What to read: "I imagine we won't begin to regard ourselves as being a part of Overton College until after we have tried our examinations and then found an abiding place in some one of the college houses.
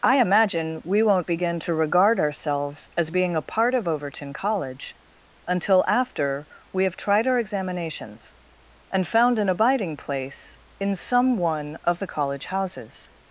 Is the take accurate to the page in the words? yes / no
no